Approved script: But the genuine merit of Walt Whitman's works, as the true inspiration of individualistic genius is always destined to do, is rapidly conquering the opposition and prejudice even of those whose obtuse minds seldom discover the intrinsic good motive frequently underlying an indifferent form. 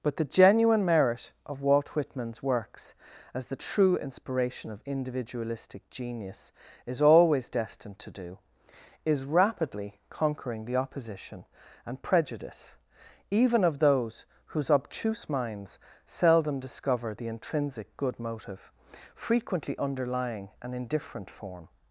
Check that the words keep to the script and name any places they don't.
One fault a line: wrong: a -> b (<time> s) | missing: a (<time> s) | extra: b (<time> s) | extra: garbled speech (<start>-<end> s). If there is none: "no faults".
no faults